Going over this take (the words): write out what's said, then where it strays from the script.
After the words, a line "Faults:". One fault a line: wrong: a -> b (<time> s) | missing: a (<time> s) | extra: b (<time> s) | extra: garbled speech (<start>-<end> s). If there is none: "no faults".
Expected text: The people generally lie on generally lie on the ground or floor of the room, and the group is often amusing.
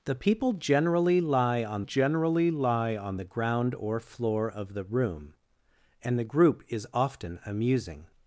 The people generally lie on generally lie on the ground or floor of the room, and the group is often amusing.
Faults:
no faults